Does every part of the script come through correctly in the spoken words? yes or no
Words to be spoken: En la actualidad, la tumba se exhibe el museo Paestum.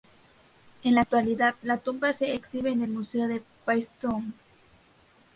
no